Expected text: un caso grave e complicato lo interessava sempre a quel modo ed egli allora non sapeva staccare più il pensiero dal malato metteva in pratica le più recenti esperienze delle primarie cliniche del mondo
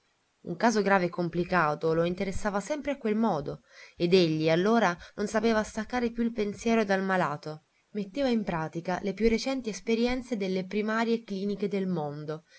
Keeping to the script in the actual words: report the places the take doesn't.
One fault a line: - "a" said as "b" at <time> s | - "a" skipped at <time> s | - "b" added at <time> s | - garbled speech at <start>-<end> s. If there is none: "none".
none